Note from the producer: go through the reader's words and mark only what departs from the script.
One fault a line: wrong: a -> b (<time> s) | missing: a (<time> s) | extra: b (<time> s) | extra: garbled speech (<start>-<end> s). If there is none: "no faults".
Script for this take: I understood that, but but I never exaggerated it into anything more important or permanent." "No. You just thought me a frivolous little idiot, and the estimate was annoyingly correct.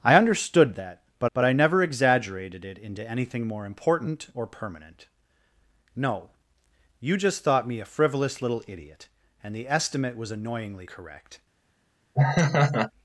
no faults